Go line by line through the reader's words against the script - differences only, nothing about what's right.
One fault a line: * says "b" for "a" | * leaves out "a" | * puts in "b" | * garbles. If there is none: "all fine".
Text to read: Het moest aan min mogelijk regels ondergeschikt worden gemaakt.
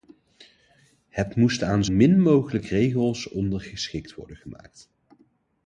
all fine